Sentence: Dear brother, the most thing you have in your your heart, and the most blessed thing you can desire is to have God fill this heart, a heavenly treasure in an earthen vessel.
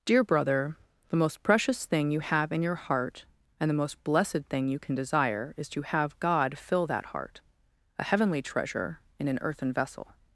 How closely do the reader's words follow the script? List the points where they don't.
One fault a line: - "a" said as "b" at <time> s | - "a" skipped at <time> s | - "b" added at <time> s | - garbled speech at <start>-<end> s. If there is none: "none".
- "precious" added at 1.4 s
- "your" skipped at 2.7 s
- "this" said as "that" at 6.9 s